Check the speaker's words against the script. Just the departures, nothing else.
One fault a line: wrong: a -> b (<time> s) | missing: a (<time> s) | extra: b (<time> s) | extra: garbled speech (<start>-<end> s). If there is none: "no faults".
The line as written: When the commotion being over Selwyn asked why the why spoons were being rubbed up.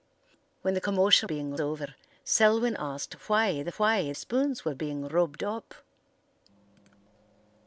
no faults